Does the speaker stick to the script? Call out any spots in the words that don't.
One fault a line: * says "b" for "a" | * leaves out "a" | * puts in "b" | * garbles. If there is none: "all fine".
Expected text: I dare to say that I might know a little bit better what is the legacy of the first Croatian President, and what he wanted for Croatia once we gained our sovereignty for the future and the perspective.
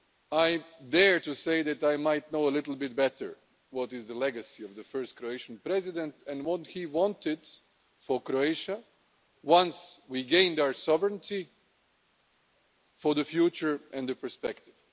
all fine